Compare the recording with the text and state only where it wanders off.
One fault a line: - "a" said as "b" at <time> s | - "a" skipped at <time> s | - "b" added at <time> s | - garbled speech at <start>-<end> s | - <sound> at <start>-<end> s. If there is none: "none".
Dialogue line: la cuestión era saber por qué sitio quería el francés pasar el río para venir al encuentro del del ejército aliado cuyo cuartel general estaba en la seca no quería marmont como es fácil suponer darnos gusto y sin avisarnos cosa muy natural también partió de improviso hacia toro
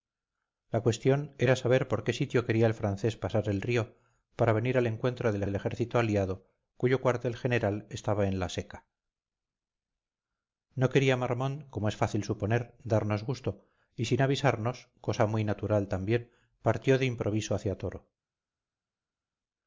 none